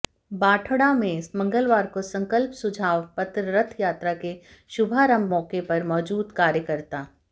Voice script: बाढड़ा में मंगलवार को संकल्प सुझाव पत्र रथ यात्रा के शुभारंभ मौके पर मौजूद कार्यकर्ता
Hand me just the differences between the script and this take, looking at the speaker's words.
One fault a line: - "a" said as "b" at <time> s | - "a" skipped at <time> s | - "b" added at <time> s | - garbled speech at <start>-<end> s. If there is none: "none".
none